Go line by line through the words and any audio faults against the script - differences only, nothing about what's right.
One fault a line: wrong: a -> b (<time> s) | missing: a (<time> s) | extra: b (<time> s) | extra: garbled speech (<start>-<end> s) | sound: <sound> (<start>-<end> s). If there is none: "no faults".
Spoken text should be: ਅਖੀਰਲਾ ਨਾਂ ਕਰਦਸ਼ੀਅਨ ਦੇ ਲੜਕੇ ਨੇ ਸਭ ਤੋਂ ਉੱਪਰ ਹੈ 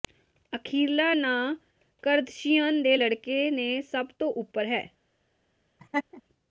sound: laugh (5.8-6.2 s)